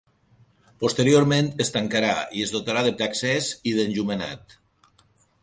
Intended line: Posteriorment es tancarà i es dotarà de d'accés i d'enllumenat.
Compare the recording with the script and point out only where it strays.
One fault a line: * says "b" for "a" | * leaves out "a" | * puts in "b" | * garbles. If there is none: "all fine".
all fine